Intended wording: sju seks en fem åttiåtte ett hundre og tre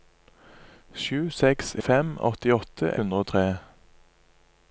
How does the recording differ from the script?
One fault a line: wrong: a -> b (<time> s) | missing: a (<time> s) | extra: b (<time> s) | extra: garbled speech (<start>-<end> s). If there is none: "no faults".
missing: en (1.7 s)
missing: ett (2.9 s)